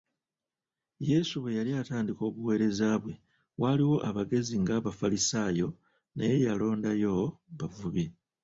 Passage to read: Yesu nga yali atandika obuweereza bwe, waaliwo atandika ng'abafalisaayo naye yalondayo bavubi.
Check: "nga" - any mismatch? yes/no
yes